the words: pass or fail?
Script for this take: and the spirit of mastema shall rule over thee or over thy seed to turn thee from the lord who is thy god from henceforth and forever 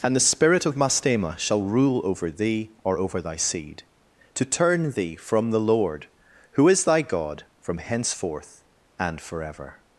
pass